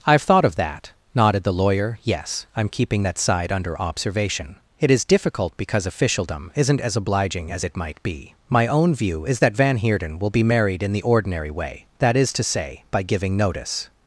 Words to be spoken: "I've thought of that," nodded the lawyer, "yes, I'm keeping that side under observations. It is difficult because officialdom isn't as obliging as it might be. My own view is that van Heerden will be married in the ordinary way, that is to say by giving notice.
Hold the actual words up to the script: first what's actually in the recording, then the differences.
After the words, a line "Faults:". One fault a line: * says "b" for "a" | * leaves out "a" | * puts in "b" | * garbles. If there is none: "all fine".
"I've thought of that," nodded the lawyer, "yes, I'm keeping that side under observation. It is difficult because officialdom isn't as obliging as it might be. My own view is that van Heerden will be married in the ordinary way, that is to say by giving notice.
Faults:
* says "observation" for "observations"